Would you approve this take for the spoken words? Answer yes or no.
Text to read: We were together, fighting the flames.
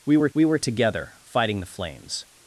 no